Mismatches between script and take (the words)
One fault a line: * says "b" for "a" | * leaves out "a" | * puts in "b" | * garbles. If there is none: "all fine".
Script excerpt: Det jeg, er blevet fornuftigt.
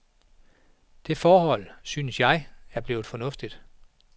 * puts in "forhold synes"